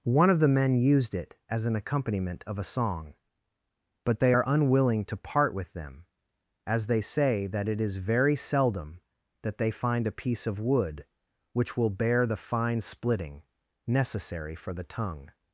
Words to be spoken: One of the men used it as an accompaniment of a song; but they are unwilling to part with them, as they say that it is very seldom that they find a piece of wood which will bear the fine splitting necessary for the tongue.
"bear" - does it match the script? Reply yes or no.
yes